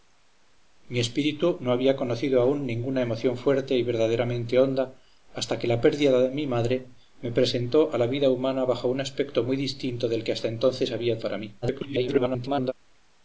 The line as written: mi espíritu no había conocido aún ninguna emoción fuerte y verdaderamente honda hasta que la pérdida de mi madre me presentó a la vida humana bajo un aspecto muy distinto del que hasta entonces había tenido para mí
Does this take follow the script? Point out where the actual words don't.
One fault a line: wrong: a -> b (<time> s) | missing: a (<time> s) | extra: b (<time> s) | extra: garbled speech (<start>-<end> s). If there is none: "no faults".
missing: tenido (11.2 s)
extra: garbled speech (11.6-12.7 s)